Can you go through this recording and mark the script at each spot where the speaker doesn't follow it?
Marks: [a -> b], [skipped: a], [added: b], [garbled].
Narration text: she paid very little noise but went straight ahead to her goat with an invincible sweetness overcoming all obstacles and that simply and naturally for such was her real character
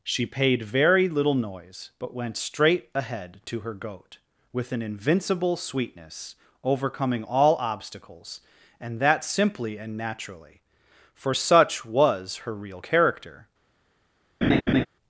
she paid very little noise but went straight ahead to her goat with an invincible sweetness overcoming all obstacles and that simply and naturally for such was her real character